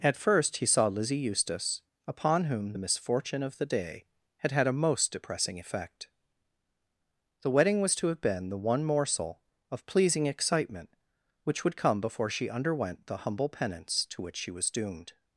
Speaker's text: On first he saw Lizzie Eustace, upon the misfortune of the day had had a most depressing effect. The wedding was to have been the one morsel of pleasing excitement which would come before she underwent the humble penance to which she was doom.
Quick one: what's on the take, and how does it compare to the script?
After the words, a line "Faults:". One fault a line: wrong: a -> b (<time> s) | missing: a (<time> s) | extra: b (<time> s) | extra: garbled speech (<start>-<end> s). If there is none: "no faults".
At first he saw Lizzie Eustace, upon whom the misfortune of the day had had a most depressing effect. The wedding was to have been the one morsel of pleasing excitement which would come before she underwent the humble penance to which she was doomed.
Faults:
wrong: On -> At (0.0 s)
extra: whom (2.5 s)
wrong: doom -> doomed (14.7 s)